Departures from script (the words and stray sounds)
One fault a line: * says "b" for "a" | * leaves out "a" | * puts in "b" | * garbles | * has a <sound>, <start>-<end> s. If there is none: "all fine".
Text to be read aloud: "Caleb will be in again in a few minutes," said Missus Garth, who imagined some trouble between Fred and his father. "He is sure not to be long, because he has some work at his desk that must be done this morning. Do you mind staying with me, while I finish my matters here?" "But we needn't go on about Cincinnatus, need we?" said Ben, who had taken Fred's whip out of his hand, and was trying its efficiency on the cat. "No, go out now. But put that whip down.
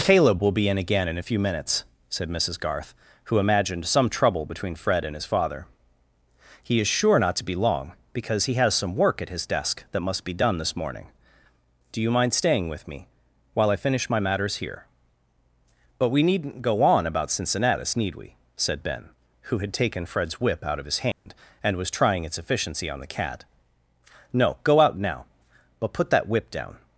* has a dropout, 21.1-21.3 s